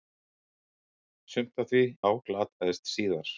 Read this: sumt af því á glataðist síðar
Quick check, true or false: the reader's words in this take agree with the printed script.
true